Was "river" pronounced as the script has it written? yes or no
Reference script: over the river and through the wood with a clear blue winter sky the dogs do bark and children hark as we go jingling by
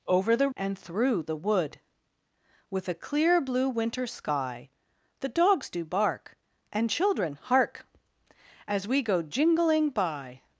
no